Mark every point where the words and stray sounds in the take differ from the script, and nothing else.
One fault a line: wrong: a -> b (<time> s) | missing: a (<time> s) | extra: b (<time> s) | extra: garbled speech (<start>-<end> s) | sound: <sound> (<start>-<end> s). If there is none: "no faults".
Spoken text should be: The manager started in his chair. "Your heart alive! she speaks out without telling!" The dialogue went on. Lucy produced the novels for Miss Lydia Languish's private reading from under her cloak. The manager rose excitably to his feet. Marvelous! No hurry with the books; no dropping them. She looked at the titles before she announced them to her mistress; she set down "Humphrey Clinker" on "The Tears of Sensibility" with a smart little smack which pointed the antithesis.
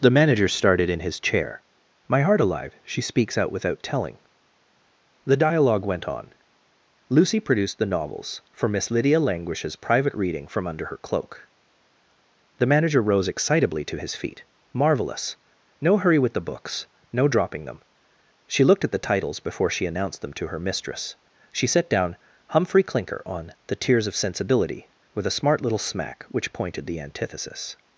wrong: Your -> My (2.1 s)